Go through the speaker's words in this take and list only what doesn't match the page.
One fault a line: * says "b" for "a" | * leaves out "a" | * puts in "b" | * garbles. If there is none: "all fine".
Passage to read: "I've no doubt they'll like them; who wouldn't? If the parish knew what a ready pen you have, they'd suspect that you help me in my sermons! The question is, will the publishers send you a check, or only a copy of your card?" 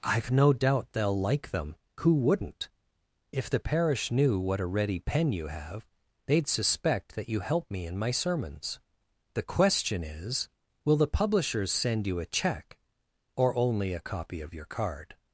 all fine